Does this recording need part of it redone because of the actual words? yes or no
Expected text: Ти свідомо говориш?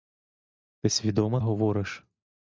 no